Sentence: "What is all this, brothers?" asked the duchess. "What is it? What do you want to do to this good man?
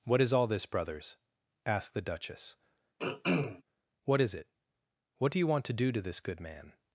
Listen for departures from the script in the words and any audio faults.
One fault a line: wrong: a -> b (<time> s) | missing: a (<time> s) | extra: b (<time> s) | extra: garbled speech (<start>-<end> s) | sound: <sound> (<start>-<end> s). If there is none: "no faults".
sound: throat clearing (3.0-3.6 s)